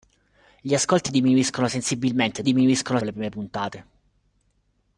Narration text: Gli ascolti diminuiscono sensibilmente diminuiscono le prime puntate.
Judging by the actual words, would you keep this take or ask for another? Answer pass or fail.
pass